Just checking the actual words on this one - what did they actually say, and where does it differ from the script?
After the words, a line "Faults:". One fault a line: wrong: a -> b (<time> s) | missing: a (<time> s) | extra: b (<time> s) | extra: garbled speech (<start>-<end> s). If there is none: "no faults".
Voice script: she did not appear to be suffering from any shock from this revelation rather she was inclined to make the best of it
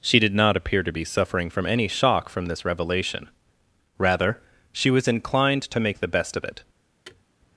she did not appear to be suffering from any shock from this revelation rather she was inclined to make the best of it
Faults:
no faults